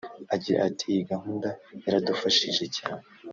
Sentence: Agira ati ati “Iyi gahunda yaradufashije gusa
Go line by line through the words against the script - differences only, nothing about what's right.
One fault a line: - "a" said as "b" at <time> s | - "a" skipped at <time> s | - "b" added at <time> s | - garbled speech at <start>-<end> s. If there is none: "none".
- "ati" skipped at 0.8 s
- "gusa" said as "cyane" at 2.8 s